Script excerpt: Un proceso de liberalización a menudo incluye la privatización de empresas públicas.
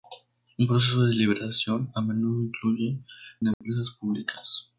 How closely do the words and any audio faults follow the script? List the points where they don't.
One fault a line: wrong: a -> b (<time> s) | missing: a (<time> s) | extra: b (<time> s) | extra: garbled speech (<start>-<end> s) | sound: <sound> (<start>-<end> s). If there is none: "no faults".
missing: la privatización (3.0 s)
sound: dropout (3.5-3.6 s)